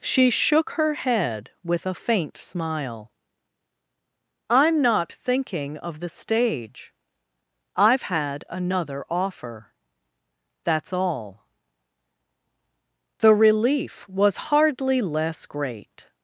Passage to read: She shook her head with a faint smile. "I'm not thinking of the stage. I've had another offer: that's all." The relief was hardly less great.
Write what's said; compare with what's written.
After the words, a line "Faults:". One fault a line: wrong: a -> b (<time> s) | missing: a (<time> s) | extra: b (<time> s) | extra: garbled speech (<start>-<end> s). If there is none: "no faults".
She shook her head with a faint smile. "I'm not thinking of the stage. I've had another offer: that's all." The relief was hardly less great.
Faults:
no faults